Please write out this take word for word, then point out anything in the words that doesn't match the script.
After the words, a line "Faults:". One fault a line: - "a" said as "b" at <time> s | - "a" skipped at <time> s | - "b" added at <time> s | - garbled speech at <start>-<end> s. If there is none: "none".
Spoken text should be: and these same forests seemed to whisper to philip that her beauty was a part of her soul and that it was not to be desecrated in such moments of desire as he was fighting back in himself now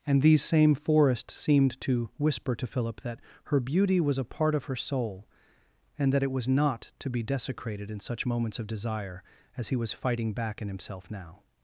and these same forests seemed to whisper to philip that her beauty was a part of her soul and that it was not to be desecrated in such moments of desire as he was fighting back in himself now
Faults:
none